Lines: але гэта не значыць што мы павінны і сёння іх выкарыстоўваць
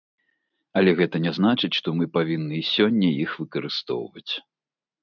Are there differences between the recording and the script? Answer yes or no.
no